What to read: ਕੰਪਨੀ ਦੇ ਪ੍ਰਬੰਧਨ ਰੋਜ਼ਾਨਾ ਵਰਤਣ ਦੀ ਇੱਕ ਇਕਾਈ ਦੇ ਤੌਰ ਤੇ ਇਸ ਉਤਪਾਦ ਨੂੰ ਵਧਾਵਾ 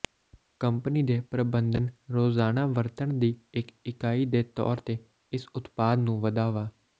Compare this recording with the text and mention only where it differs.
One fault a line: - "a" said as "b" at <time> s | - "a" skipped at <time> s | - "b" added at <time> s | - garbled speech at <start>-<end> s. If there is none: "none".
none